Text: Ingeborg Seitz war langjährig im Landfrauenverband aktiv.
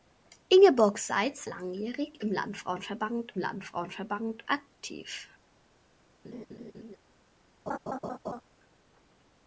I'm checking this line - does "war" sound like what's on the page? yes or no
no